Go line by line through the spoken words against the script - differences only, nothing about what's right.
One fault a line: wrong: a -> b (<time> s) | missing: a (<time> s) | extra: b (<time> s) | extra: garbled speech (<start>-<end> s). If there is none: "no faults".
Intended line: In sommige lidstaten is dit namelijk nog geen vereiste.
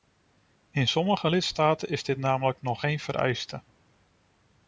no faults